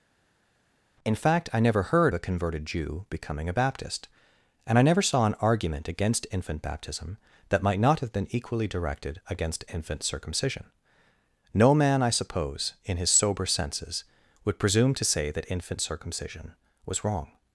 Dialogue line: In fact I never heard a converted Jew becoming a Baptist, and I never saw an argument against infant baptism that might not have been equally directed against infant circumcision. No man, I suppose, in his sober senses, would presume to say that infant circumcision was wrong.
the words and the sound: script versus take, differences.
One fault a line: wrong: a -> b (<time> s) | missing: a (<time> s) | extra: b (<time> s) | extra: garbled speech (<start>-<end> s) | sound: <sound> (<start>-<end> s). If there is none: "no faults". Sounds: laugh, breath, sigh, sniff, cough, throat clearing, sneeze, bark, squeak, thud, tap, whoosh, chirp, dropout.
no faults